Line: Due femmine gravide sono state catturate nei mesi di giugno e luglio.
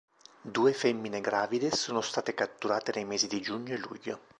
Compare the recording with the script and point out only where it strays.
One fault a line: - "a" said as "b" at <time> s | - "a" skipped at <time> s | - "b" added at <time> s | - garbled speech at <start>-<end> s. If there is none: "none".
none